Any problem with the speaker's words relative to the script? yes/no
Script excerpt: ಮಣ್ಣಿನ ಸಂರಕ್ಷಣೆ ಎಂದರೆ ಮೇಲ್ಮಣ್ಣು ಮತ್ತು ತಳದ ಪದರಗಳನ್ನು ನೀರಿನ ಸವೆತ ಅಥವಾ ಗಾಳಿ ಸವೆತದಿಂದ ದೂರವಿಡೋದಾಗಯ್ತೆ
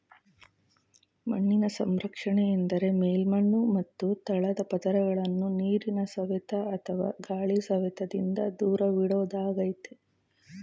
no